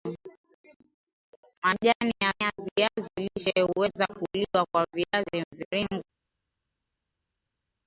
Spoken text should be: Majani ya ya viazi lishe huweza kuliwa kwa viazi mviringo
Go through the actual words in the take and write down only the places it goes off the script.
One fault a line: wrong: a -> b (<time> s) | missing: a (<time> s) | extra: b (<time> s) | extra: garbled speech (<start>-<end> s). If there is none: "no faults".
no faults